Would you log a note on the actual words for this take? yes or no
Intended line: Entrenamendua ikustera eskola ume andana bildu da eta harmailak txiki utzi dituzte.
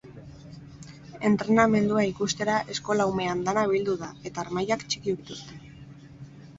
yes